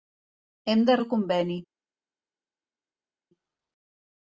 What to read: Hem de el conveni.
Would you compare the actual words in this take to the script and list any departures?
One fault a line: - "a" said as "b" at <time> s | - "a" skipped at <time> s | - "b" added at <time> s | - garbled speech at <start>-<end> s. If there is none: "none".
none